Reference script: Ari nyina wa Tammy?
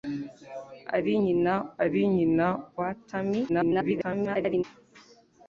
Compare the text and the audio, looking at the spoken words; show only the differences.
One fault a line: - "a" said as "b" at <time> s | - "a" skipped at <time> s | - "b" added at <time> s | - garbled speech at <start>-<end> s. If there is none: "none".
- "ari nyina" added at 1.8 s
- garbled speech at 3.5-4.6 s